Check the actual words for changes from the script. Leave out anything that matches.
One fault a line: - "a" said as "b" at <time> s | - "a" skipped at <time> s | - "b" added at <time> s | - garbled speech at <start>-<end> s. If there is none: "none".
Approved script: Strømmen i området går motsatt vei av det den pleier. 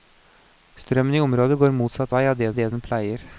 - "det" added at 2.6 s